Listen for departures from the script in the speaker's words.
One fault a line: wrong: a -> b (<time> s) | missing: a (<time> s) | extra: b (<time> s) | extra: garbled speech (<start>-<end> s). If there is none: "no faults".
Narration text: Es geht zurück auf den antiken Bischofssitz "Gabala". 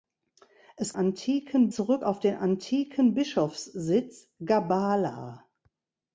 wrong: geht -> antiken (0.9 s)